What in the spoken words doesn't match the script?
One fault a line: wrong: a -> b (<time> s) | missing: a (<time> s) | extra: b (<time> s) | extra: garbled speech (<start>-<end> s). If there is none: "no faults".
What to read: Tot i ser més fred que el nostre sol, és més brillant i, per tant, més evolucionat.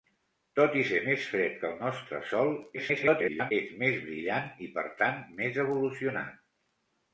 extra: garbled speech (2.8-3.5 s)